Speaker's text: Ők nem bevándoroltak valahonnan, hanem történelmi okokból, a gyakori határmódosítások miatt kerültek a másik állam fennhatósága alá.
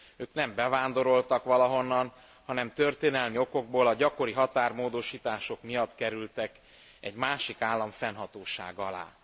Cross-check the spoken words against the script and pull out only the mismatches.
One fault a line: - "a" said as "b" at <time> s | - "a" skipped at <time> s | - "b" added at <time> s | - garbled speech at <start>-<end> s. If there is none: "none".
- "a" said as "egy" at 7.0 s